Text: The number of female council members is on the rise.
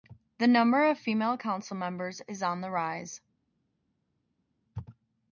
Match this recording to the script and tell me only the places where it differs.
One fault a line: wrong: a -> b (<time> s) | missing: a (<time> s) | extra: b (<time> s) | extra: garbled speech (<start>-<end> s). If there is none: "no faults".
no faults